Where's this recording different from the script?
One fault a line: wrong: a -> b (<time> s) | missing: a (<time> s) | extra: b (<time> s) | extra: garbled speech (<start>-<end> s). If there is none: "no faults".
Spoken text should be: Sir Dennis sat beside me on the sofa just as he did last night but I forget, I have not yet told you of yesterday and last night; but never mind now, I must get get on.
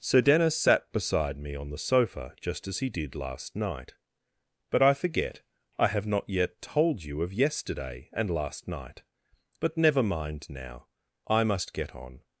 missing: get (11.9 s)